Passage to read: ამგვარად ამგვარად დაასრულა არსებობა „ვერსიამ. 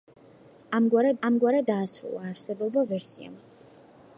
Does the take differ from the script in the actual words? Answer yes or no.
no